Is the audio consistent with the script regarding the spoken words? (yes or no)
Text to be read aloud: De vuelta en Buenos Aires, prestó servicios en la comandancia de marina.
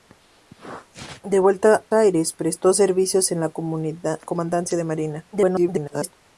no